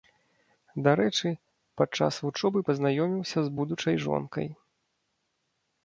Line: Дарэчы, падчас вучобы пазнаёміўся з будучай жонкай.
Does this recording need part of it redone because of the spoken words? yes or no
no